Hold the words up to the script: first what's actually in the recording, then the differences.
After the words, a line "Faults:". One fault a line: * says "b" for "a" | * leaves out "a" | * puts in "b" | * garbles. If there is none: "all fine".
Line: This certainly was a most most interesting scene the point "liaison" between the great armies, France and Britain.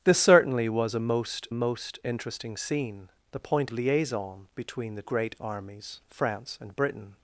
This certainly was a most most interesting scene the point "liaison" between the great armies, France and Britain.
Faults:
all fine